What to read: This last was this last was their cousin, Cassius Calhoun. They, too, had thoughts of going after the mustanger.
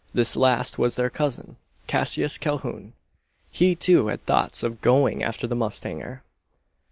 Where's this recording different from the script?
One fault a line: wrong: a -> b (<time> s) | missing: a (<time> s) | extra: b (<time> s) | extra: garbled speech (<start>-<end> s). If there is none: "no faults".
missing: this last was (0.9 s)
wrong: They -> He (3.5 s)